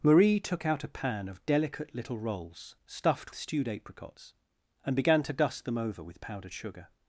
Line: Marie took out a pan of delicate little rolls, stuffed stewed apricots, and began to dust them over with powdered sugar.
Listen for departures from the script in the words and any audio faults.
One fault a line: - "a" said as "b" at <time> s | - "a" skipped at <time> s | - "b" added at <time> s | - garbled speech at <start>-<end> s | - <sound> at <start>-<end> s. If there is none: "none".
none